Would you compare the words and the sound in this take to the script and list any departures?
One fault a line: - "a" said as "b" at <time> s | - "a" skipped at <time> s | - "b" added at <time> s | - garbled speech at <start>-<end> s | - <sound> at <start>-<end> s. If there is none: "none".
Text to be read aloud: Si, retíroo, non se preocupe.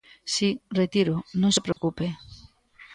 - dropout at 1.7-1.8 s